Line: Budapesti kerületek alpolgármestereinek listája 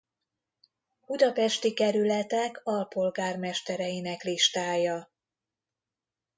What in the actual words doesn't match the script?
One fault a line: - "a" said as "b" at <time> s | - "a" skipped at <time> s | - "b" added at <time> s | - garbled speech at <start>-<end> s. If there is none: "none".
none